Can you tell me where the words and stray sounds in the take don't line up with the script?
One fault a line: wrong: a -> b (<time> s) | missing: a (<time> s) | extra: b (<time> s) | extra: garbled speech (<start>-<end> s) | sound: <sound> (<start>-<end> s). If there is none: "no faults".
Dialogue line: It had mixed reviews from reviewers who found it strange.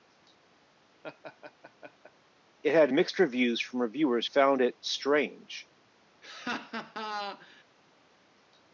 sound: laugh (1.0-2.1 s)
missing: who (4.3 s)
sound: laugh (6.2-7.6 s)